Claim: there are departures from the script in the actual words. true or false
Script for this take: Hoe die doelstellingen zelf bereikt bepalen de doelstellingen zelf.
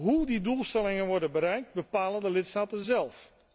true